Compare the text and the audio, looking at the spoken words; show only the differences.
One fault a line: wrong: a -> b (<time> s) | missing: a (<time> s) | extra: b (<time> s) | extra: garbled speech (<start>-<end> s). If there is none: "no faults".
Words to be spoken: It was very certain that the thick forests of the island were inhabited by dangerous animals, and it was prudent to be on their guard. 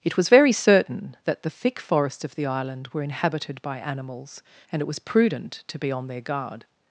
missing: dangerous (3.8 s)